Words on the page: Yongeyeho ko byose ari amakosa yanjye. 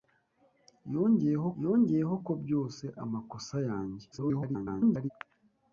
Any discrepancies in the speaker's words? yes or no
yes